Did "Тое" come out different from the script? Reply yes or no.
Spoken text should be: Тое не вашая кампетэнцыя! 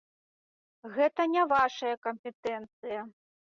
yes